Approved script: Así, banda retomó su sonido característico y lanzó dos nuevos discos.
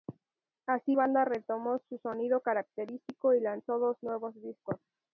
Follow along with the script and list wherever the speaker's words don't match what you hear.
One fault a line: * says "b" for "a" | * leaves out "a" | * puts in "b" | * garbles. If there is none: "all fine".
all fine